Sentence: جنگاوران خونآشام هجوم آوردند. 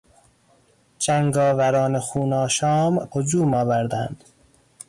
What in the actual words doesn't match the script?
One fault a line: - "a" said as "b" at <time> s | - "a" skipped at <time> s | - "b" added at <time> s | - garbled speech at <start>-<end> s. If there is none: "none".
none